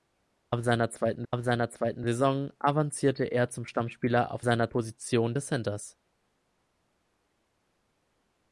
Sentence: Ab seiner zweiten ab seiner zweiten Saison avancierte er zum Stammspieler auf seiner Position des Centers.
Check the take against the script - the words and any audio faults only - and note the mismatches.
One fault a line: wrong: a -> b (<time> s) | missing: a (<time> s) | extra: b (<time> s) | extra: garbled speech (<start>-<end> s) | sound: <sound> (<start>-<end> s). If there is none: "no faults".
no faults